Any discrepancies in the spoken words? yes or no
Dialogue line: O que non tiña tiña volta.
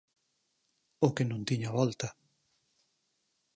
yes